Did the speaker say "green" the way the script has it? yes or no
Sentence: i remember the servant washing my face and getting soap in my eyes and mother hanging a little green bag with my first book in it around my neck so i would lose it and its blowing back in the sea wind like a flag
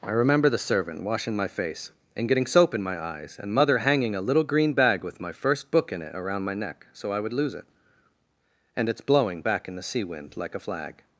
yes